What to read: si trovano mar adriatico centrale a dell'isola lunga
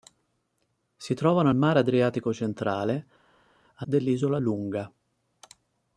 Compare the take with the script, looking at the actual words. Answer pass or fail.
pass